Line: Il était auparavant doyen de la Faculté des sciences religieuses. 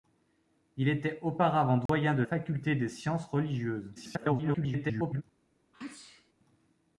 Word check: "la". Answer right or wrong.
wrong